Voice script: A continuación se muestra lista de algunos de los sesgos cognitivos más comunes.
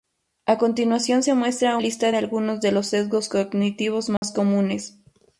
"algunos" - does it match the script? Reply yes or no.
yes